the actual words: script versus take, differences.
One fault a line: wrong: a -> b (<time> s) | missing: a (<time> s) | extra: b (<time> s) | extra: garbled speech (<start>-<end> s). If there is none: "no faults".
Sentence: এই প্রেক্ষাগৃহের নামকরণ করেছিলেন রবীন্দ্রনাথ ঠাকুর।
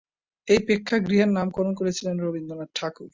no faults